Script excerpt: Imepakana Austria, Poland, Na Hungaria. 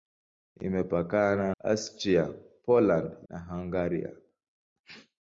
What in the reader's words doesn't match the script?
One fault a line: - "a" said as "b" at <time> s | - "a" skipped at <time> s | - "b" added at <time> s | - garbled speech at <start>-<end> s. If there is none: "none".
none